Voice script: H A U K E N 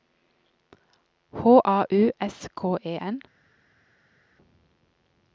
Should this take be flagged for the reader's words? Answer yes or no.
yes